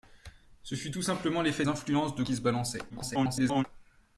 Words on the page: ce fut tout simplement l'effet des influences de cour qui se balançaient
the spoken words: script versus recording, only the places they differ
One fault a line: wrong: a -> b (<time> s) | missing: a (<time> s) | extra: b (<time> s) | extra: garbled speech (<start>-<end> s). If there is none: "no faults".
missing: des (1.7 s)
missing: cour (2.2 s)
extra: garbled speech (2.9-3.6 s)